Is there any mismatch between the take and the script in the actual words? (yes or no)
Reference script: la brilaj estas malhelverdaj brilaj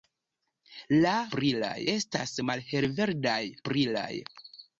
no